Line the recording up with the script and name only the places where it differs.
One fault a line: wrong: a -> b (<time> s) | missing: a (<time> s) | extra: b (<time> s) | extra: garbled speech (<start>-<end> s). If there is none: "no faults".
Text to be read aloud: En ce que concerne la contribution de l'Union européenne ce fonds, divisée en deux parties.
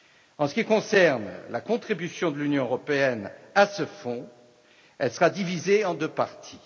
wrong: que -> qui (0.5 s)
extra: à (3.5 s)
extra: elle sera (5.0 s)